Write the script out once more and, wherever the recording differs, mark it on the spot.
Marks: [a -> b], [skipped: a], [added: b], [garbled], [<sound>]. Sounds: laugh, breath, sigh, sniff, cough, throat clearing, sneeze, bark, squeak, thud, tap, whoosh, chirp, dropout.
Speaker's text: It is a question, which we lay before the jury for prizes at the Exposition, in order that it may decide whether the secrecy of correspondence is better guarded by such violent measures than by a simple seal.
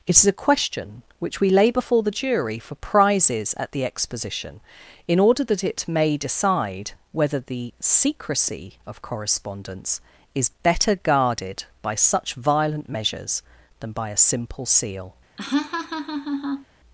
It is a question, which we lay before the jury for prizes at the Exposition, in order that it may decide whether the secrecy of correspondence is better guarded by such violent measures than by a simple seal. [laugh]